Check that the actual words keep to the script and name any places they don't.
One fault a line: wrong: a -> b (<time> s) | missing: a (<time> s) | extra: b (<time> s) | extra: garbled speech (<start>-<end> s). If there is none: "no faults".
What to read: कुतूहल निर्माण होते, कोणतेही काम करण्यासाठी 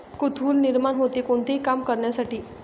no faults